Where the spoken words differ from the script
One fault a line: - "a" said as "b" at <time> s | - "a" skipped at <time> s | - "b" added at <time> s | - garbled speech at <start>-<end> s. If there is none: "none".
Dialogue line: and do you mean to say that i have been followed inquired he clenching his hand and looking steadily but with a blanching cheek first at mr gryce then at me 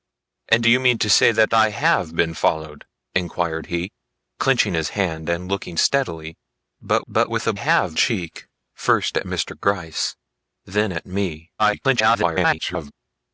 - "but" added at 7.1 s
- "blanching" said as "have" at 7.5 s
- garbled speech at 11.6-12.9 s